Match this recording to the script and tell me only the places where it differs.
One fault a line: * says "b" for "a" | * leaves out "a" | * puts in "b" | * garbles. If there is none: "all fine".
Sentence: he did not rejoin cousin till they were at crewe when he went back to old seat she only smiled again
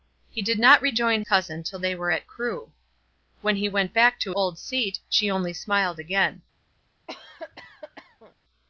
all fine